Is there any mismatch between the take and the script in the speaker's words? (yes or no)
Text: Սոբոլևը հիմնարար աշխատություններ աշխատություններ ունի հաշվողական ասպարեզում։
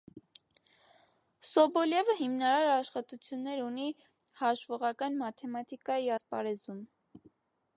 yes